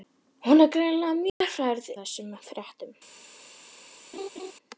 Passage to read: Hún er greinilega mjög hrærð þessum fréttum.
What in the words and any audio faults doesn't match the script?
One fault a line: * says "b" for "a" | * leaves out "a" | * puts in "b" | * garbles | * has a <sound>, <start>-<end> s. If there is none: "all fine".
* has a dropout, 1.3-1.4 s
* has a laugh, 4.1-4.5 s